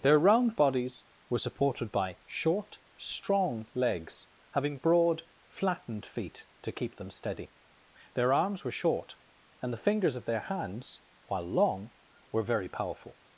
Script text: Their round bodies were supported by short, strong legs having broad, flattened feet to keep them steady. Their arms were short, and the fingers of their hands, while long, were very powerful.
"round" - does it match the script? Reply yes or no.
yes